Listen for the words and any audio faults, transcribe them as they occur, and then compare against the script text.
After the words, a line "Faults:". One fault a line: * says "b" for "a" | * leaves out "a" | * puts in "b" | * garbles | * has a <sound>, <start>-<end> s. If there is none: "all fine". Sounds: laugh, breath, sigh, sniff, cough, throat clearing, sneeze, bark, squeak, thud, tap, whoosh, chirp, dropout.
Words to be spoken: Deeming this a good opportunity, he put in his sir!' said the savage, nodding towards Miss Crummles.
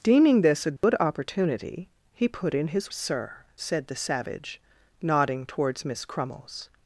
Deeming this a good opportunity, he put in his sir!' said the savage, nodding towards Miss Crummles.
Faults:
* has a dropout, 0.8-0.8 s